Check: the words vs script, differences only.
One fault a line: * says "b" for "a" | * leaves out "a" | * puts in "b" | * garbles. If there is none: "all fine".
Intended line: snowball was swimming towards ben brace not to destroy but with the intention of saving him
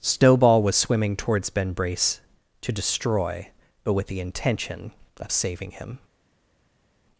* leaves out "not"